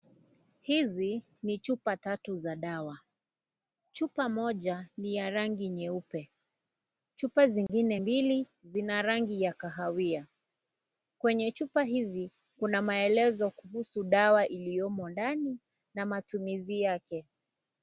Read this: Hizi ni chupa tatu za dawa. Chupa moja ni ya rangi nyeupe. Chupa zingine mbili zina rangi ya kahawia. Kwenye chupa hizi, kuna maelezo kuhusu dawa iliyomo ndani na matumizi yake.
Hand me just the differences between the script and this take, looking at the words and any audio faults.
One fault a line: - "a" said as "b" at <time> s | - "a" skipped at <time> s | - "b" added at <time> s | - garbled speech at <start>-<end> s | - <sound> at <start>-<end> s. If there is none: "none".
- dropout at 7.7-7.7 s